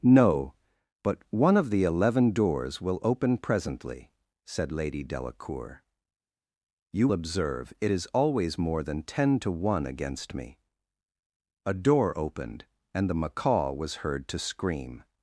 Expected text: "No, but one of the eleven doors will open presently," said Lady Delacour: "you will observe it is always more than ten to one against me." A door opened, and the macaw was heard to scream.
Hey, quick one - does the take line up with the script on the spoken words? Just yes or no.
no